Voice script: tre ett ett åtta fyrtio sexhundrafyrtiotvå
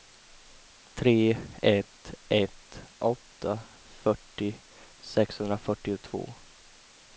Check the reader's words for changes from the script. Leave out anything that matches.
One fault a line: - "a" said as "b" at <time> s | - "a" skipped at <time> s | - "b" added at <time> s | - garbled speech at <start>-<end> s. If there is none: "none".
none